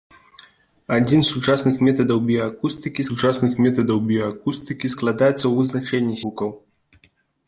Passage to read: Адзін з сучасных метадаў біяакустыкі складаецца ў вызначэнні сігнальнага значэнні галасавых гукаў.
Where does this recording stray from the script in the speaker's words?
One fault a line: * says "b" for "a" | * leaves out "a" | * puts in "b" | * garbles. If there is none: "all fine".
* puts in "сучасных метадаў біяакустыкі"
* leaves out "сігнальнага значэнні галасавых"